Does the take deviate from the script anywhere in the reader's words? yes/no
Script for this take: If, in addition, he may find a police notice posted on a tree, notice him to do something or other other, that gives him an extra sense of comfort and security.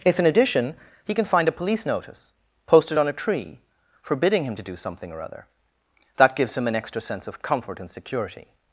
yes